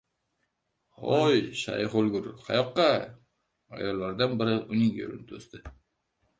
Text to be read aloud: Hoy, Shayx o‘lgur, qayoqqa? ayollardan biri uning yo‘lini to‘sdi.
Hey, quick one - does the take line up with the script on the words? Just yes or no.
yes